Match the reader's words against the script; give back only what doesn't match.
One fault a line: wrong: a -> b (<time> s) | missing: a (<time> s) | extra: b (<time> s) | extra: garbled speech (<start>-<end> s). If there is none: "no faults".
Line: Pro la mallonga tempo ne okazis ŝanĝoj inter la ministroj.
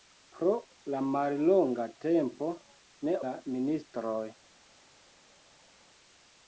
missing: okazis ŝanĝoj inter (3.1 s)